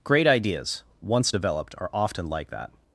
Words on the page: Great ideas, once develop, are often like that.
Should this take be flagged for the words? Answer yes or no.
yes